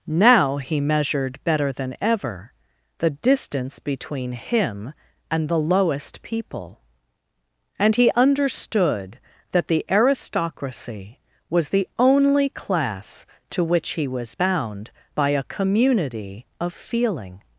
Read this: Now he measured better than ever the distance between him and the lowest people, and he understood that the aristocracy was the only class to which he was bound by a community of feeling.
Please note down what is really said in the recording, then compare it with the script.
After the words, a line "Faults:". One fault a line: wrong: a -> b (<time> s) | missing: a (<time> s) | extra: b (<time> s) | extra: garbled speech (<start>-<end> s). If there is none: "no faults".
Now he measured better than ever the distance between him and the lowest people, and he understood that the aristocracy was the only class to which he was bound by a community of feeling.
Faults:
no faults